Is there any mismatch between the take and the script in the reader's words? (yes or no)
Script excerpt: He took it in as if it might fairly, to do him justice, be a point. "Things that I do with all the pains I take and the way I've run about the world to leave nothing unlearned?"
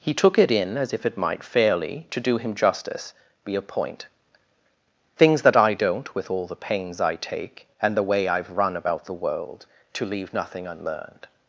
yes